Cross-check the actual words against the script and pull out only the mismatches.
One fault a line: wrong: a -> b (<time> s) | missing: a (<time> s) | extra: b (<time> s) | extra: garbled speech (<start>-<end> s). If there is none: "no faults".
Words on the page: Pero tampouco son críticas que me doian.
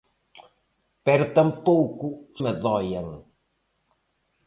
missing: son críticas que (2.1 s)